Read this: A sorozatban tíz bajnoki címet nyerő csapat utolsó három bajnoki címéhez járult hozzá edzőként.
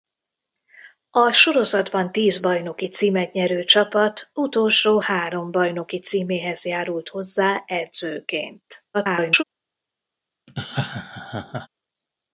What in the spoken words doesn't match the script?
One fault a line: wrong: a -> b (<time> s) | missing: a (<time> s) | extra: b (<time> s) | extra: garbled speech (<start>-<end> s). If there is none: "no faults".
extra: garbled speech (8.9-9.4 s)